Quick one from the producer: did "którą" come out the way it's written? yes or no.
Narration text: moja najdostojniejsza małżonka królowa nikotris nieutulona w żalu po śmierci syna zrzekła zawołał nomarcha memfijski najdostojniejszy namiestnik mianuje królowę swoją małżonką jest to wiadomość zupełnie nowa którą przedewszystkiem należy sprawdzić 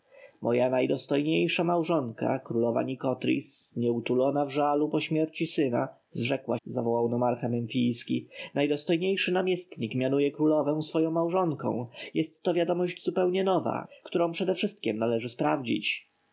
yes